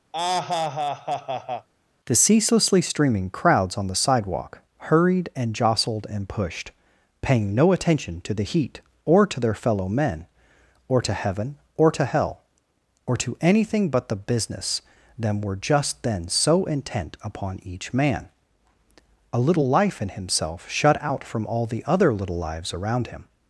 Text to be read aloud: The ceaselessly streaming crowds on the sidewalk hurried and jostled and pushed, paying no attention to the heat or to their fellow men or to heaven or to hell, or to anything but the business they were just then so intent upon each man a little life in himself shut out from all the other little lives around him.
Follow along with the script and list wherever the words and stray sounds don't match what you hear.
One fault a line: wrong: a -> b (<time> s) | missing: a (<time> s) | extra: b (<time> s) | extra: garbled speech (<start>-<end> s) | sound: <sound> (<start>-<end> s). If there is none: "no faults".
sound: laugh (0.1-1.7 s)
wrong: they -> them (15.2 s)